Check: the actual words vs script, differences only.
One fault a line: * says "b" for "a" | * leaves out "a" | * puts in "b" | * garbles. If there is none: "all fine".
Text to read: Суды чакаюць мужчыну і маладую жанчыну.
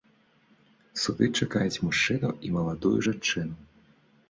all fine